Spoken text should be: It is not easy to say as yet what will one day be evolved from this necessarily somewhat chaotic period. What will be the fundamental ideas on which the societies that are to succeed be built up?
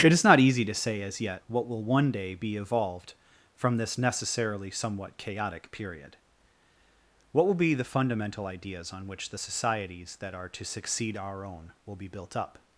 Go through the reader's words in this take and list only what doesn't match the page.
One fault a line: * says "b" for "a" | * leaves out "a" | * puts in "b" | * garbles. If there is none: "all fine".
* puts in "our own will"